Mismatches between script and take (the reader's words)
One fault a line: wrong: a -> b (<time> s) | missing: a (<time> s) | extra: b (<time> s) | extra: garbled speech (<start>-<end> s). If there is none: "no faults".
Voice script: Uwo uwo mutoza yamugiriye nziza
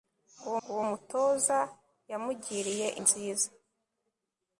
no faults